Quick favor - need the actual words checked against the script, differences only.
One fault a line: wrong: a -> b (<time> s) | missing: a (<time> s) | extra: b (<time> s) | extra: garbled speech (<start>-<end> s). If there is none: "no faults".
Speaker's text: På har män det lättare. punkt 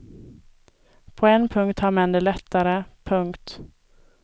extra: en punkt (1.3 s)